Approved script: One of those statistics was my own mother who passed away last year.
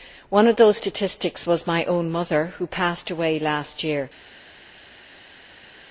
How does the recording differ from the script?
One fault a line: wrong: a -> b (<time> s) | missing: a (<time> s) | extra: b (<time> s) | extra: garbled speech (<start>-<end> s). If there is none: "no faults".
no faults